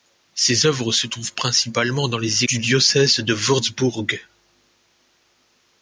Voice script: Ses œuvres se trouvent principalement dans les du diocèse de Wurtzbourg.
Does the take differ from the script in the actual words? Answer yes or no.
no